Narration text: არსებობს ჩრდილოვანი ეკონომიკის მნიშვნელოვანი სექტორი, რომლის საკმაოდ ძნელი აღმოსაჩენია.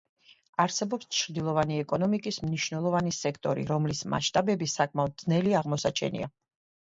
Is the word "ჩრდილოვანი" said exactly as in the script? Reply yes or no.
yes